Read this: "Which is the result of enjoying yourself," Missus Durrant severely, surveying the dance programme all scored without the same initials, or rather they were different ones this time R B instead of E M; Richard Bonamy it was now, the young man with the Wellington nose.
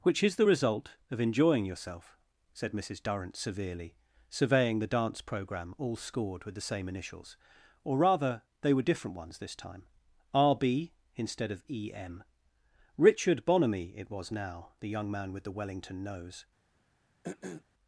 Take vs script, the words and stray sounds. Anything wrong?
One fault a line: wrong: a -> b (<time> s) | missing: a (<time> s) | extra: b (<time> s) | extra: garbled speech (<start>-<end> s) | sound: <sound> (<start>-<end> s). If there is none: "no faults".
extra: said (2.5 s)
wrong: without -> with (6.4 s)
sound: throat clearing (17.2-17.6 s)